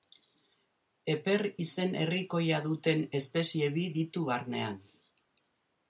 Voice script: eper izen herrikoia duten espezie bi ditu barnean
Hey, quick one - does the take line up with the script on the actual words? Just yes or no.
yes